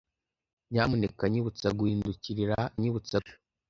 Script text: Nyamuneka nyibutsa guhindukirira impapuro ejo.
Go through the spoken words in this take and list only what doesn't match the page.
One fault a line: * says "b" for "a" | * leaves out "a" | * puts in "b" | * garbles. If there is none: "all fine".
* says "nyibutsa" for "impapuro"